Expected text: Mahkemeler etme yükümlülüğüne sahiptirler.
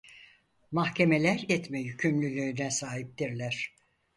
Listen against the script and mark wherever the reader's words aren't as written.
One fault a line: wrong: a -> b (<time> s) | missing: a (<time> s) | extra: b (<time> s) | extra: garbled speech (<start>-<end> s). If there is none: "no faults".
no faults